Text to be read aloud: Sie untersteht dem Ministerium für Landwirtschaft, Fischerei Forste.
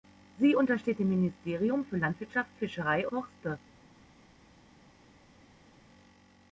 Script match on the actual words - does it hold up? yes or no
yes